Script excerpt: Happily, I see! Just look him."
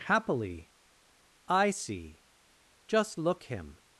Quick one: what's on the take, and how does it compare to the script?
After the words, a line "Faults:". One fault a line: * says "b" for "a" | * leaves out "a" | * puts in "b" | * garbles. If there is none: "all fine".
Happily, I see! Just look him."
Faults:
all fine